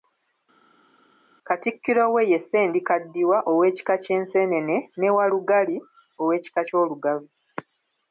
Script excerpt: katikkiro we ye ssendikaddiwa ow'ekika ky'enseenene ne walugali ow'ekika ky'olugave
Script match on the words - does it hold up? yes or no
yes